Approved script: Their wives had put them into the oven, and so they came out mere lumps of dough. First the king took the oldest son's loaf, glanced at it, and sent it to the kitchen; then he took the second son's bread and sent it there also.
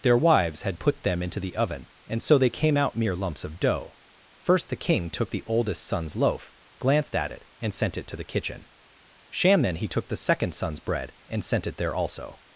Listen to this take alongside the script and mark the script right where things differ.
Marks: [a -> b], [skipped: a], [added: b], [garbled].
Their wives had put them into the oven, and so they came out mere lumps of dough. First the king took the oldest son's loaf, glanced at it, and sent it to the kitchen; [added: sham] then he took the second son's bread and sent it there also.